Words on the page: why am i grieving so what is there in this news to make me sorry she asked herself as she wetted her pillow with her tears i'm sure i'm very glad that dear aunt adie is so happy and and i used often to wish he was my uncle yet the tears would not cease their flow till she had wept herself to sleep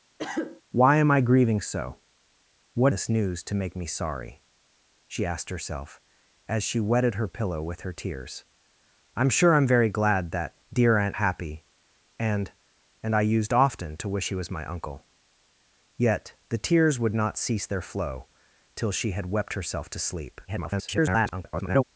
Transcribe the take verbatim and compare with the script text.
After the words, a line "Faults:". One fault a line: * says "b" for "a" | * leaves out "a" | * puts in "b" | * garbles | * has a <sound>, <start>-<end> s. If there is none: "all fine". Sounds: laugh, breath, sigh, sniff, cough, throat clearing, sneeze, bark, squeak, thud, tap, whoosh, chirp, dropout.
why am i grieving so what this news to make me sorry she asked herself as she wetted her pillow with her tears i'm sure i'm very glad that dear aunt happy and and i used often to wish he was my uncle yet the tears would not cease their flow till she had wept herself to sleep [garbled]
Faults:
* has a cough, 0.2-0.6 s
* leaves out "is there in"
* leaves out "adie is so"
* garbles